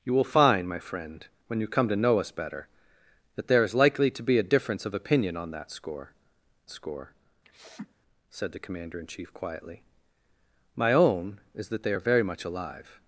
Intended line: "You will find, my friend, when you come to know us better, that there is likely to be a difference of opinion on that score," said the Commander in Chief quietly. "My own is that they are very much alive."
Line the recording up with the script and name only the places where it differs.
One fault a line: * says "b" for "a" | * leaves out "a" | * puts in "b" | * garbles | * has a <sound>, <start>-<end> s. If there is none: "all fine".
* puts in "score"
* has a sniff, 7.4-7.9 s